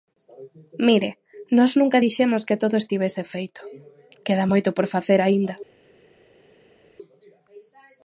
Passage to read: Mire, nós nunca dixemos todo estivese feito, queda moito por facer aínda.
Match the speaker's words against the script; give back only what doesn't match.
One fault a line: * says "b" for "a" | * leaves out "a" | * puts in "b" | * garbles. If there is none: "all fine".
* puts in "que"